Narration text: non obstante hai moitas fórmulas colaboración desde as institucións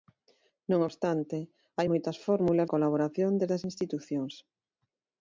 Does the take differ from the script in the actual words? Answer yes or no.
no